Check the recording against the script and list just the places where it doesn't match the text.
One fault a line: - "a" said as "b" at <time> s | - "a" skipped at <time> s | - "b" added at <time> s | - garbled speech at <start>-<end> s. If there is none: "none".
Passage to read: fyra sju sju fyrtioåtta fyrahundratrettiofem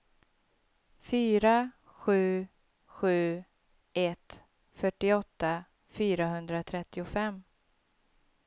- "ett" added at 3.9 s